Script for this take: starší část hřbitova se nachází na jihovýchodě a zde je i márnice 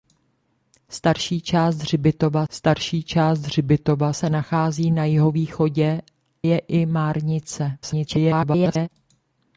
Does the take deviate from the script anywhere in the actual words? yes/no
yes